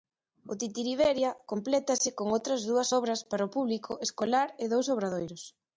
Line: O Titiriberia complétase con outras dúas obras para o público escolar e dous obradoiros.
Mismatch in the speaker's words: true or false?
false